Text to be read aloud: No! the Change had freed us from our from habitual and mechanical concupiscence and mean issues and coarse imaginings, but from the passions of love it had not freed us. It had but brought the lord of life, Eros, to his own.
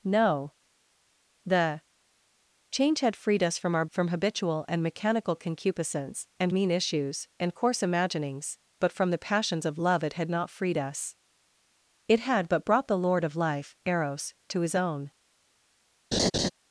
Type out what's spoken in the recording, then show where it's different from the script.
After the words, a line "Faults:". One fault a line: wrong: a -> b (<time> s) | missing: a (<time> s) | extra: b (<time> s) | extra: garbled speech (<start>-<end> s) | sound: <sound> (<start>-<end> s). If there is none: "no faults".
No! the Change had freed us from our from habitual and mechanical concupiscence and mean issues and coarse imaginings, but from the passions of love it had not freed us. It had but brought the lord of life, Eros, to his own.
Faults:
sound: laugh (16.1-16.5 s)